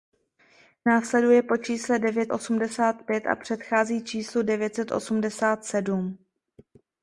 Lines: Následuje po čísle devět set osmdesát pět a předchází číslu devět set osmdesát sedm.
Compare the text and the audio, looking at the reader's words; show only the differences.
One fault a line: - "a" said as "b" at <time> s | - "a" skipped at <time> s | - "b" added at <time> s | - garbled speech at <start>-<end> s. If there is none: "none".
- "set" skipped at 2.3 s